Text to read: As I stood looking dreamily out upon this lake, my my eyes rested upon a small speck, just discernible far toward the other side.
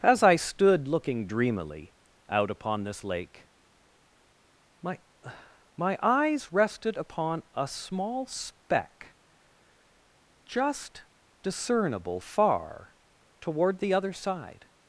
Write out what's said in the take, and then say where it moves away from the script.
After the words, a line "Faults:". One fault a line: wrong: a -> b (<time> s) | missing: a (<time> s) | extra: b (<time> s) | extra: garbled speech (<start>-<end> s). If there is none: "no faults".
As I stood looking dreamily out upon this lake, my my eyes rested upon a small speck, just discernible far toward the other side.
Faults:
no faults